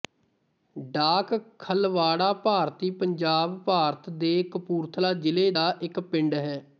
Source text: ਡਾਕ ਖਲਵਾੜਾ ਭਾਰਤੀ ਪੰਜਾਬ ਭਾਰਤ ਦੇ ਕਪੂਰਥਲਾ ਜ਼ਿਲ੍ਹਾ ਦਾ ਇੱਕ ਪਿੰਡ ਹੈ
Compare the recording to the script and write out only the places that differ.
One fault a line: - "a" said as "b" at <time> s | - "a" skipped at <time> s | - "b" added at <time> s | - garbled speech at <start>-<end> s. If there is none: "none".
none